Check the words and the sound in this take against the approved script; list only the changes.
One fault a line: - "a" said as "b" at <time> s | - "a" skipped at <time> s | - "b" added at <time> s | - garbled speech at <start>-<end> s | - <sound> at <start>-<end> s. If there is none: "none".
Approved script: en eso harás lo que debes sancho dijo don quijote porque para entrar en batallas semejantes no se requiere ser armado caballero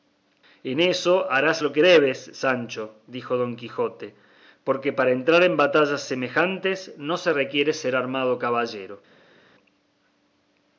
none